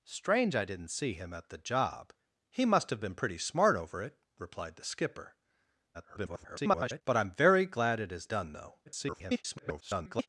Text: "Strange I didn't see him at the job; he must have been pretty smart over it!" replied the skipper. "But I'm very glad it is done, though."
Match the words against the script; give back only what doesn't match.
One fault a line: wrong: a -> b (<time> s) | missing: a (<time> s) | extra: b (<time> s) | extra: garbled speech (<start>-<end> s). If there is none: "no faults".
extra: garbled speech (5.9-7.0 s)
extra: garbled speech (8.9-10.3 s)